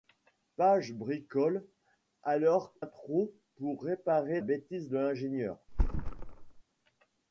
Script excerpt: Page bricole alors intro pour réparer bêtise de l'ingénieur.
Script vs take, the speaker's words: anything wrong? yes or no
no